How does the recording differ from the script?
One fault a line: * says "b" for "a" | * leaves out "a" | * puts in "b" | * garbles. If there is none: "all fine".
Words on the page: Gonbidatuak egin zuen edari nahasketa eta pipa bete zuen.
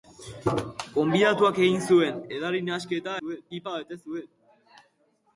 * says "zuen" for "eta"